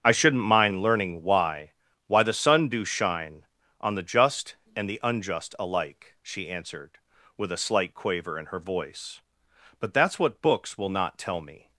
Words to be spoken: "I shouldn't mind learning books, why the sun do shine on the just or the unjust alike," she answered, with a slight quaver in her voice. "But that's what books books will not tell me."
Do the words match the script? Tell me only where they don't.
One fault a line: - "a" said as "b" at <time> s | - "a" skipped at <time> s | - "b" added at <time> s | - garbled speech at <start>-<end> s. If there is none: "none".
- "books" said as "why" at 1.2 s
- "or" said as "and" at 4.8 s
- "books" skipped at 10.8 s